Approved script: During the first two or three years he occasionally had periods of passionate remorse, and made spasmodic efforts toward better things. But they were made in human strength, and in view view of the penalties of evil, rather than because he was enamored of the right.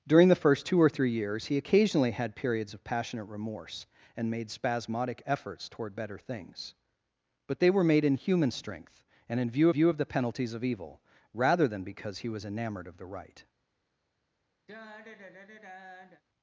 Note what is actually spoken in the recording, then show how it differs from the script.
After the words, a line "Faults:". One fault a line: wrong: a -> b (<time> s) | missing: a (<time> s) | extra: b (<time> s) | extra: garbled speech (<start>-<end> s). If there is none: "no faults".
During the first two or three years he occasionally had periods of passionate remorse, and made spasmodic efforts toward better things. But they were made in human strength, and in view view of the penalties of evil, rather than because he was enamored of the right.
Faults:
no faults